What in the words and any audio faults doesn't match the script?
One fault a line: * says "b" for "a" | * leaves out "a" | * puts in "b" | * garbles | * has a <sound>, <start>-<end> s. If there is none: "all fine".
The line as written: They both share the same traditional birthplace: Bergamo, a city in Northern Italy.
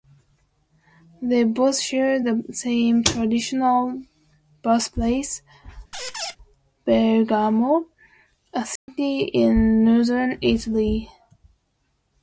* has a squeak, 5.9-6.4 s
* has a dropout, 8.8-8.9 s